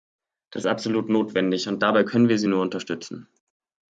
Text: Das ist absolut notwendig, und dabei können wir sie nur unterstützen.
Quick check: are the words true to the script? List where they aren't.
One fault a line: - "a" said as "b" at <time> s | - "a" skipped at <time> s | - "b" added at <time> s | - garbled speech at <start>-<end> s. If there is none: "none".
none